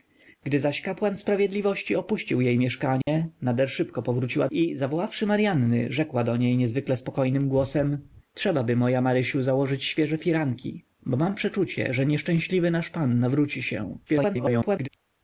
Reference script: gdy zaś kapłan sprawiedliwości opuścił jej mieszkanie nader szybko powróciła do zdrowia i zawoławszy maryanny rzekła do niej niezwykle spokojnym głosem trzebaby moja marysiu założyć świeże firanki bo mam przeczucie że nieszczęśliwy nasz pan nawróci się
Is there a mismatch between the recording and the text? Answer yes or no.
yes